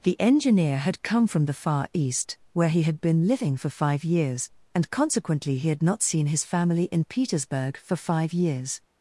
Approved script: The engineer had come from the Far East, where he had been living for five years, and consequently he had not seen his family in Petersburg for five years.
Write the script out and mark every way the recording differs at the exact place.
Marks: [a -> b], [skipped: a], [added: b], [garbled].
The engineer had come from the Far East, where he had been living for five years, and consequently he had not seen his family in Petersburg for five years.